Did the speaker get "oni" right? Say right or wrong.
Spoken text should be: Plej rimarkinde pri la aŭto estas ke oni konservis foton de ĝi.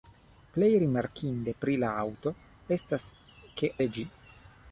wrong